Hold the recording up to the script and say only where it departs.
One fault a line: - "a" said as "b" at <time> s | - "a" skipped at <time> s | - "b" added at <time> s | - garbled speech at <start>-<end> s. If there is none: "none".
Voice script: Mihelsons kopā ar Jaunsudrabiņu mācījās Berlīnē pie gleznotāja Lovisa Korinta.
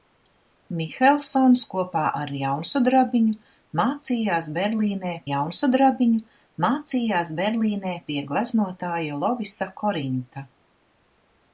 - "Jaunsudrabiņu mācījās Berlīnē" added at 5.3 s